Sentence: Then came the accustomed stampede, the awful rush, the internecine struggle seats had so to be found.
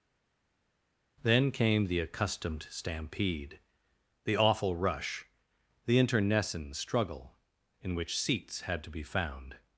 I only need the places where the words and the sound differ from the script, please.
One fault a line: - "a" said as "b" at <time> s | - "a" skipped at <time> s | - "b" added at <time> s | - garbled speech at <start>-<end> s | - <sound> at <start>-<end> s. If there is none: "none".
- "in which" added at 7.8 s
- "so" skipped at 8.8 s